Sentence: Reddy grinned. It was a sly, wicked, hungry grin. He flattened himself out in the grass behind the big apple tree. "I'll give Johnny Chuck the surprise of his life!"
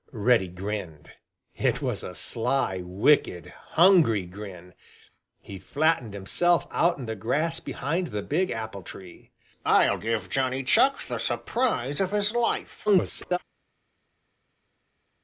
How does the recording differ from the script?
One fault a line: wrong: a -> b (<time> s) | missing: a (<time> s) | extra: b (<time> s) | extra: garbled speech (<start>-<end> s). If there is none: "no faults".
extra: garbled speech (12.9-13.4 s)